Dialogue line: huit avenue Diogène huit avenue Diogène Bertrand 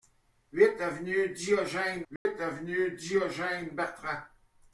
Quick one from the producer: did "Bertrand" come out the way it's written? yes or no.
yes